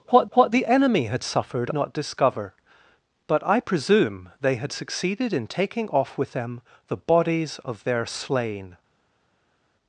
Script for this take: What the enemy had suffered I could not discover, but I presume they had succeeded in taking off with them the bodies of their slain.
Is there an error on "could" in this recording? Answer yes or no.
yes